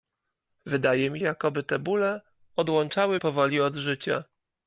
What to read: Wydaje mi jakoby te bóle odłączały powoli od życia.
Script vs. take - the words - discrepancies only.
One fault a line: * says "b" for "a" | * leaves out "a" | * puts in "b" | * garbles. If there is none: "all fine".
all fine